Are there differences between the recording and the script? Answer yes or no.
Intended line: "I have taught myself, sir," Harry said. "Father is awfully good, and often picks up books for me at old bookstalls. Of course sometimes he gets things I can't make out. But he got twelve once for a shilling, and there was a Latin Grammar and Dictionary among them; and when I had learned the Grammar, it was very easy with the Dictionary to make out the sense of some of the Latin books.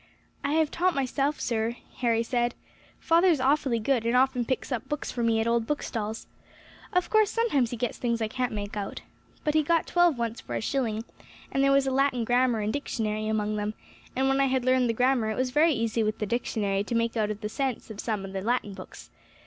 no